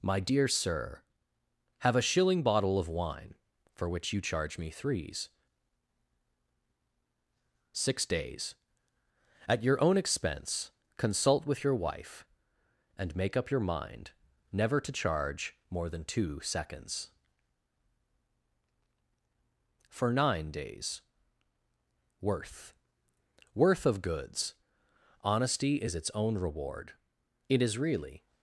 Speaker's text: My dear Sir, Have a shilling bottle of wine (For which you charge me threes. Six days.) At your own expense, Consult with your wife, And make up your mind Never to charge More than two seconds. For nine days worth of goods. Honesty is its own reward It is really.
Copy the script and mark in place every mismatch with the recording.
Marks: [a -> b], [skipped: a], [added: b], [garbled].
My dear Sir, Have a shilling bottle of wine (For which you charge me threes. Six days.) At your own expense, Consult with your wife, And make up your mind Never to charge More than two seconds. For nine days worth [added: worth] of goods. Honesty is its own reward It is really.